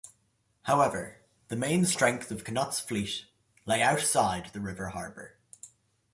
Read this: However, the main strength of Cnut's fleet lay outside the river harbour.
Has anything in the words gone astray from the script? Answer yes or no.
no